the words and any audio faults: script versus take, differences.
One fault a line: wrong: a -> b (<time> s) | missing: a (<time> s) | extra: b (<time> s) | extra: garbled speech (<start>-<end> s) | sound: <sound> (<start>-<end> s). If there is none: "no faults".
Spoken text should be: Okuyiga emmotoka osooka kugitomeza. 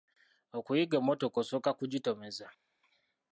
no faults